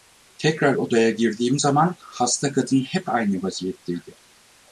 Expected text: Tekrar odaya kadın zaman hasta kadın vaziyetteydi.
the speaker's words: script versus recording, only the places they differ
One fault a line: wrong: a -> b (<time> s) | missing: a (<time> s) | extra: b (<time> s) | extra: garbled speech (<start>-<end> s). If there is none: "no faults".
wrong: kadın -> girdiğim (1.1 s)
extra: hep aynı (2.8 s)